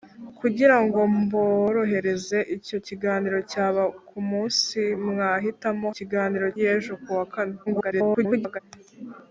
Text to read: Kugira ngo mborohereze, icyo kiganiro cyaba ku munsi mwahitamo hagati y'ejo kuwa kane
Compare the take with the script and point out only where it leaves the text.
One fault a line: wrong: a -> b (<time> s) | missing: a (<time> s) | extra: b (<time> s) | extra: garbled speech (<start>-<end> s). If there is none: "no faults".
wrong: hagati -> kiganiro (6.0 s)
extra: garbled speech (7.7-8.6 s)